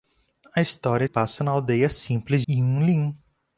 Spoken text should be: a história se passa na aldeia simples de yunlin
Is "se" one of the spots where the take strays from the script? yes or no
yes